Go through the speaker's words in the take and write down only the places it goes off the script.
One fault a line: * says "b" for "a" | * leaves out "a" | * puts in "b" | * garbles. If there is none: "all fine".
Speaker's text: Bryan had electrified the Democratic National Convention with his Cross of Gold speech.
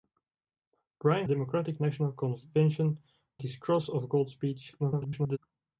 * leaves out "had electrified the"
* leaves out "with"
* garbles